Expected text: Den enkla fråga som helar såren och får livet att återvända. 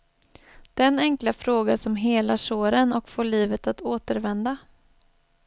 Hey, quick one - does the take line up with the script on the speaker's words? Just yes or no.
yes